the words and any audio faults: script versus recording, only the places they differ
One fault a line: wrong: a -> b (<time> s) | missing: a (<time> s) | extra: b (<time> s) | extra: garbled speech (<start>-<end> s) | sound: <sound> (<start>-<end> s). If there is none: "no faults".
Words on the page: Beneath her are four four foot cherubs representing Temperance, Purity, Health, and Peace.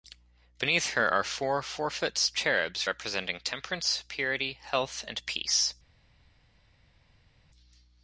no faults